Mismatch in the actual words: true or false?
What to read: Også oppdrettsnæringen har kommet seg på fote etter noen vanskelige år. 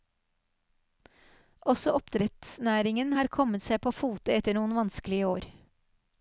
false